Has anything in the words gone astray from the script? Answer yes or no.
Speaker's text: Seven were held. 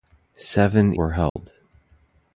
no